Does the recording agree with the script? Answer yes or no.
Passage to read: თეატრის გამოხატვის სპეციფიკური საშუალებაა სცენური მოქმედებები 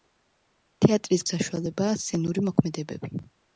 no